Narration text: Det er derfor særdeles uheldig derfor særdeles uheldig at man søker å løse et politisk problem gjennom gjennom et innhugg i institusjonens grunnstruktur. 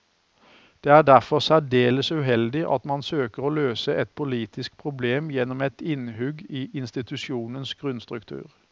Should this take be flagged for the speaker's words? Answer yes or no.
yes